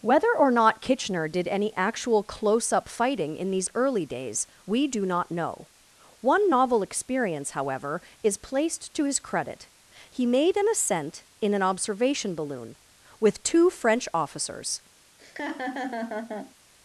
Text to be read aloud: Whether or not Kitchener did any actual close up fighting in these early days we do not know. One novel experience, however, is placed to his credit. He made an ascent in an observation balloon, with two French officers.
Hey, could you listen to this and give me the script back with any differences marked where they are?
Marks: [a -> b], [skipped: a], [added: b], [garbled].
Whether or not Kitchener did any actual close up fighting in these early days we do not know. One novel experience, however, is placed to his credit. He made an ascent in an observation balloon, with two French officers.